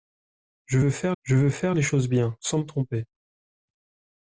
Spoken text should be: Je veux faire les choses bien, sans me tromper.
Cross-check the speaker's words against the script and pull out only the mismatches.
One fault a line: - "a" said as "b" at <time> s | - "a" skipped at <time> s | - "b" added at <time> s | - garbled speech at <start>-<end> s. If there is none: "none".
- "je veux faire" added at 1.2 s